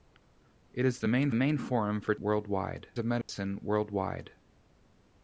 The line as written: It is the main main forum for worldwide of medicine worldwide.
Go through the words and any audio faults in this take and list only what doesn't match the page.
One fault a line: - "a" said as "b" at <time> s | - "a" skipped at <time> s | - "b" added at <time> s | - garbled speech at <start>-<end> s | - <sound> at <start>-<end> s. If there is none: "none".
- dropout at 3.2-3.3 s